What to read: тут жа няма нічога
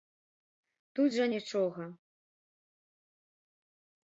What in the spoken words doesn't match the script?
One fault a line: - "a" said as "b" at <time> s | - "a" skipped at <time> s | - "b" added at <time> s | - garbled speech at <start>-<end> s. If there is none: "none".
- "няма" skipped at 1.3 s